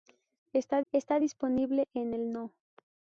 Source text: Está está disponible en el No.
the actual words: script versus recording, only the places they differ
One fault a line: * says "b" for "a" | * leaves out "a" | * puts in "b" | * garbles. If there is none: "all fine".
all fine